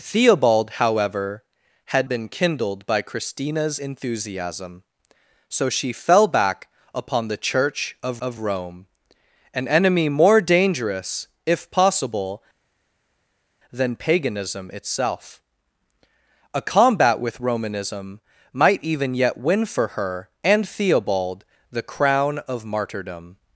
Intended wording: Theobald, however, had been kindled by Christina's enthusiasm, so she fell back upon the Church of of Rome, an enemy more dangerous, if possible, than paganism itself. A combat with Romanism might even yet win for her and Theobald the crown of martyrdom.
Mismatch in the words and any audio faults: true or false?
false